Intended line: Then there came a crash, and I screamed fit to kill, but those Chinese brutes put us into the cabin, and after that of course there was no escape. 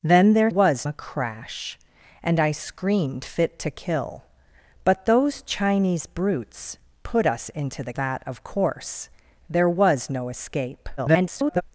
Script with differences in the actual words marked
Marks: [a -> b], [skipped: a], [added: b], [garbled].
Then there [came -> was] a crash, and I screamed fit to kill, but those Chinese brutes put us into the [skipped: cabin, and after] that of course there was no escape. [garbled]